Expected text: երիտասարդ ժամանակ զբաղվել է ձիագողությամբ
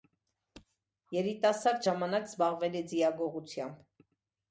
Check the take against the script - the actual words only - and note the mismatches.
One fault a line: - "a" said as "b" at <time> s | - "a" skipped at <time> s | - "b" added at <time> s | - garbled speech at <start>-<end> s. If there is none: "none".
none